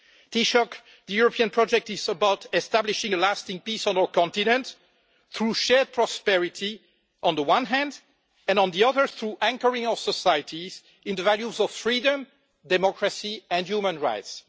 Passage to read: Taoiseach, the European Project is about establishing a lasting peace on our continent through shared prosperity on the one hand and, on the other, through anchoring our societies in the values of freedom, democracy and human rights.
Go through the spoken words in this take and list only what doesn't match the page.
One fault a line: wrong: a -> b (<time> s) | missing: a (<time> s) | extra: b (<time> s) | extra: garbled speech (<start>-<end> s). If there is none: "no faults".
no faults